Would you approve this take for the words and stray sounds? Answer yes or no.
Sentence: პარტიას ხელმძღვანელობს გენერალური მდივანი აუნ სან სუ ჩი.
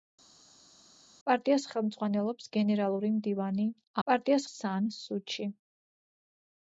no